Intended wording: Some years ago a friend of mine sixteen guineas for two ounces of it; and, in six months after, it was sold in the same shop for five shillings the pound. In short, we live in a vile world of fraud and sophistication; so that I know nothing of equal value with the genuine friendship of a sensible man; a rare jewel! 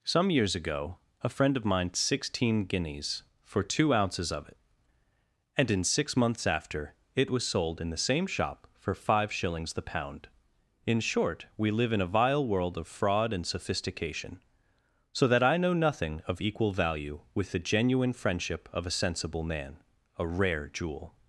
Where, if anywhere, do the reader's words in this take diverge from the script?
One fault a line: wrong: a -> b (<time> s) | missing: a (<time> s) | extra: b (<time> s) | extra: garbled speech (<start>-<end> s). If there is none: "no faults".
no faults